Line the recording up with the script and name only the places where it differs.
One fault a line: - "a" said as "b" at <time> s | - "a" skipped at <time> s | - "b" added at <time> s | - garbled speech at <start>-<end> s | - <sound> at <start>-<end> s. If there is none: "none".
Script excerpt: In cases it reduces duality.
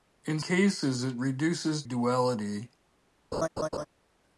- laugh at 3.3-3.9 s